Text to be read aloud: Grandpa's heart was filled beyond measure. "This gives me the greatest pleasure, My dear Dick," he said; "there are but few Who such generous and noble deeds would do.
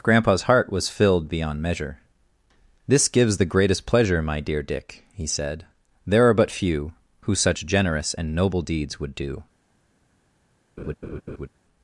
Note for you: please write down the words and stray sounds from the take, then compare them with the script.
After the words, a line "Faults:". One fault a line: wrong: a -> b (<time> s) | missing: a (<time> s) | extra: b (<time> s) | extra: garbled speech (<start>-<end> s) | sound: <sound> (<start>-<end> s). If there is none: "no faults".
Grandpa's heart was filled beyond measure. "This gives the greatest pleasure, My dear Dick," he said; "there are but few Who such generous and noble deeds would do.
Faults:
missing: me (3.4 s)
sound: laugh (10.8-11.5 s)